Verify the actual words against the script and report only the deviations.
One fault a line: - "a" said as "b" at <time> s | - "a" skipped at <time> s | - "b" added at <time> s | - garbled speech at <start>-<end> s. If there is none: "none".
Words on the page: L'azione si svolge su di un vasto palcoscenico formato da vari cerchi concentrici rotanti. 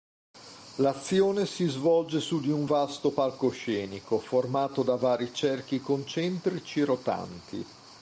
none